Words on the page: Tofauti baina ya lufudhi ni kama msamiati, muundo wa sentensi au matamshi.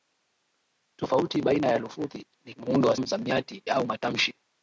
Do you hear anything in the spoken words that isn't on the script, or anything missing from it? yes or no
yes